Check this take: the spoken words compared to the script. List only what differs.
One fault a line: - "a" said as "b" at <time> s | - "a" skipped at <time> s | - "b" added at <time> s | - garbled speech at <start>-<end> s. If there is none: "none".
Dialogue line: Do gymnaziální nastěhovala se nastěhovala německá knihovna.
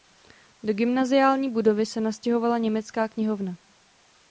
- "nastěhovala" said as "budovy" at 1.5 s